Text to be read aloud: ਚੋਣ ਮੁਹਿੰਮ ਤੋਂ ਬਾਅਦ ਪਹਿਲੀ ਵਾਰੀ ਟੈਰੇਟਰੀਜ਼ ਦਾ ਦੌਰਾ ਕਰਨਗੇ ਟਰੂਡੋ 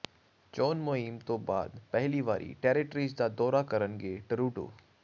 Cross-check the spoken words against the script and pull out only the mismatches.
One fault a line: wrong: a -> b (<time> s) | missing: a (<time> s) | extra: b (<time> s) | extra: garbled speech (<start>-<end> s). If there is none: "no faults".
no faults